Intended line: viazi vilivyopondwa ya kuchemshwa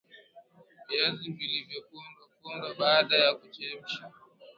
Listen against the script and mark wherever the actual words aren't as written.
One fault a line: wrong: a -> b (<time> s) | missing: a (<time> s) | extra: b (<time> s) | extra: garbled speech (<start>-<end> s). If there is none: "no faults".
extra: pondwa baada (2.4 s)